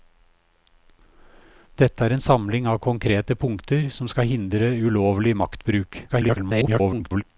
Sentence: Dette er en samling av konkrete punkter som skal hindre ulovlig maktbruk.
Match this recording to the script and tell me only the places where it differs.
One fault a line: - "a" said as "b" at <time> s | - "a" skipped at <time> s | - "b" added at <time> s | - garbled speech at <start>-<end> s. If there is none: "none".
- garbled speech at 6.1-7.2 s